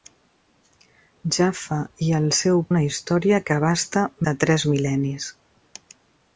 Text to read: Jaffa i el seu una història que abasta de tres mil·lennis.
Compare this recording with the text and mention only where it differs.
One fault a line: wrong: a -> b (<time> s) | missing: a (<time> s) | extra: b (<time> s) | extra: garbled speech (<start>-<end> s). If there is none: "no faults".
no faults